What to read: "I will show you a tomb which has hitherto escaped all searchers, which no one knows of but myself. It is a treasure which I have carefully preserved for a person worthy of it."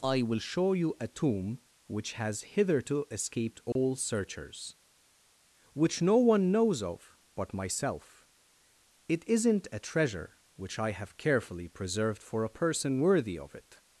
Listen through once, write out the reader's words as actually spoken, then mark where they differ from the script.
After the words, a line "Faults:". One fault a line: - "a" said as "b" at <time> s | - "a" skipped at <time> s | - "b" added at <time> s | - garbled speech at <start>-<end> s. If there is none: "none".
"I will show you a tomb which has hitherto escaped all searchers, which no one knows of but myself. It isn't a treasure which I have carefully preserved for a person worthy of it."
Faults:
- "is" said as "isn't" at 9.3 s